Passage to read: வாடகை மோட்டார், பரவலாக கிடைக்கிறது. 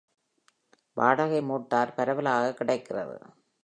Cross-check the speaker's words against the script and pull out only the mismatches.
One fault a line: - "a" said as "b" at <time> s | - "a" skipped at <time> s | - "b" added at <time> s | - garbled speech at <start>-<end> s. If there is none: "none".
none